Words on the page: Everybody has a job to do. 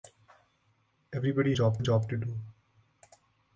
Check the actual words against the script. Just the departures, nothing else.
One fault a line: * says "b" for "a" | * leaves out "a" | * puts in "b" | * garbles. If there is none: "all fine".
* says "job" for "has"